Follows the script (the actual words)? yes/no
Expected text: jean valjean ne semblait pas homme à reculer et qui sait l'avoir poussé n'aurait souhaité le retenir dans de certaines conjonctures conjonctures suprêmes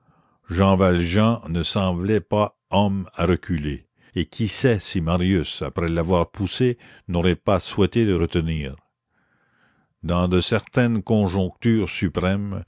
no